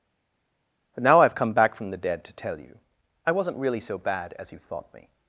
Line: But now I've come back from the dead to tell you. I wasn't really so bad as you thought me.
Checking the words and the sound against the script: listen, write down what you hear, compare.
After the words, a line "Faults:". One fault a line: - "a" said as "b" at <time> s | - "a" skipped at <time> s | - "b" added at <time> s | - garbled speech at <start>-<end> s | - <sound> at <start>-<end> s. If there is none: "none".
But now I've come back from the dead to tell you. I wasn't really so bad as you thought me.
Faults:
none